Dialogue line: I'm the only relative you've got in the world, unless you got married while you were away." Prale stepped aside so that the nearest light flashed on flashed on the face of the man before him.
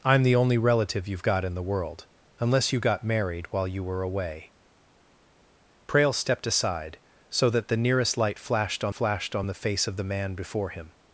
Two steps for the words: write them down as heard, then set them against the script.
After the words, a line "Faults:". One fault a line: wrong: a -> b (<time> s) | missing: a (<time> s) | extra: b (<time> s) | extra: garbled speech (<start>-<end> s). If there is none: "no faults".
I'm the only relative you've got in the world, unless you got married while you were away." Prale stepped aside so that the nearest light flashed on flashed on the face of the man before him.
Faults:
no faults